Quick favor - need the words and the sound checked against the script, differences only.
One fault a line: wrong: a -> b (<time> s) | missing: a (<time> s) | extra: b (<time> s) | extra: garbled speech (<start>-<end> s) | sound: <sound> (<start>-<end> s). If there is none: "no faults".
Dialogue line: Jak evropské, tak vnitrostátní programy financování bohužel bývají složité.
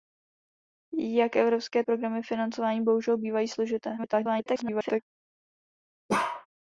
missing: tak vnitrostátní (1.8 s)
extra: garbled speech (4.0-5.0 s)
sound: bark (6.1-6.5 s)